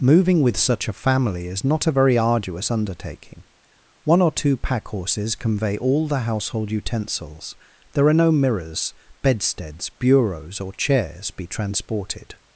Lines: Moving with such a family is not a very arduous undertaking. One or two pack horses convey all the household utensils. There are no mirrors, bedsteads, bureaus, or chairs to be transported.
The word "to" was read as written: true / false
false